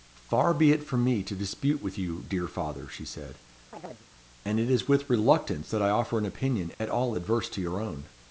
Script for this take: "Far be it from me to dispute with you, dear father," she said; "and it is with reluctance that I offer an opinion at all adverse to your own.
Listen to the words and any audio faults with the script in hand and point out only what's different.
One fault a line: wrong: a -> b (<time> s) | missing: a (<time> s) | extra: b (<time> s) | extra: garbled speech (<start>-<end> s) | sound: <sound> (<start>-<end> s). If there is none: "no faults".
sound: chirp (3.7-4.1 s)
sound: dropout (6.7-6.8 s)